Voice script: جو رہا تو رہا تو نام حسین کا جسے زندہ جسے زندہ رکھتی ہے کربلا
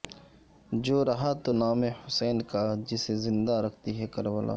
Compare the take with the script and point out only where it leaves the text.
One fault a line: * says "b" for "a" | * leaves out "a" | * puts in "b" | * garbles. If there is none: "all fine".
* leaves out "رہا تو"
* leaves out "جسے زندہ"